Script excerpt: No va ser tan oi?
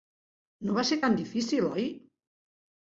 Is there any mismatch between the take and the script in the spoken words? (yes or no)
yes